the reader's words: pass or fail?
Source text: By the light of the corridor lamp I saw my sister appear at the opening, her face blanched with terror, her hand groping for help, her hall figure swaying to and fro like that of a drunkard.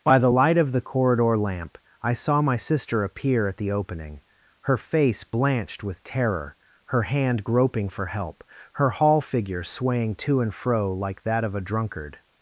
pass